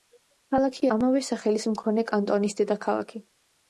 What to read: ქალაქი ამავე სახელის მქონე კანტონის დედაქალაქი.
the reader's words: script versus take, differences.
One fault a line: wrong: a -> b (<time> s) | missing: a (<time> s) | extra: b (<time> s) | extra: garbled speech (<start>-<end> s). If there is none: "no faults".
no faults